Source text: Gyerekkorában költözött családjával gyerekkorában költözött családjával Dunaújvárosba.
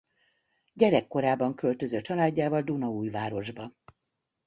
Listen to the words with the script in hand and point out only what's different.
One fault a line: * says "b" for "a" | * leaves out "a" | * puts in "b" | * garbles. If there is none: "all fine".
* leaves out "gyerekkorában költözött családjával"